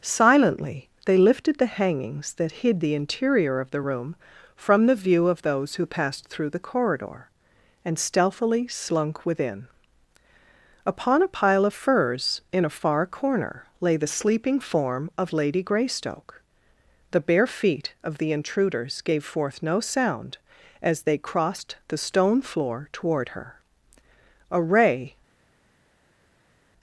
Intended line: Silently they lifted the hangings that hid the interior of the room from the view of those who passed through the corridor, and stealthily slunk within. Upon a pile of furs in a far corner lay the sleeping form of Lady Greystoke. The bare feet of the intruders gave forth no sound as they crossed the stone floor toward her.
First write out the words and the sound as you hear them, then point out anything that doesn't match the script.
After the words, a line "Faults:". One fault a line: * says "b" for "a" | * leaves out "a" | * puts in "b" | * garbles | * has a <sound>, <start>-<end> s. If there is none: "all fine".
Silently they lifted the hangings that hid the interior of the room from the view of those who passed through the corridor, and stealthily slunk within. Upon a pile of furs in a far corner lay the sleeping form of Lady Greystoke. The bare feet of the intruders gave forth no sound as they crossed the stone floor toward her. A ray
Faults:
* puts in "A ray"